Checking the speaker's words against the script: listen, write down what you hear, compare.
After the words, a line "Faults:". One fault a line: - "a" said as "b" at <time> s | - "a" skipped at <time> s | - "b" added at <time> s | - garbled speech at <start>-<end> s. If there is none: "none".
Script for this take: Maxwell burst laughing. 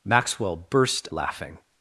Maxwell burst laughing.
Faults:
none